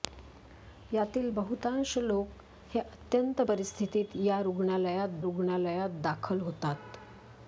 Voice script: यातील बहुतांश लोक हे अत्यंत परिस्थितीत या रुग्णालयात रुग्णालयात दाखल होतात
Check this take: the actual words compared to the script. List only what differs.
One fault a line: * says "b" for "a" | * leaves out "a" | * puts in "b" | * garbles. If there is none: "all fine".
all fine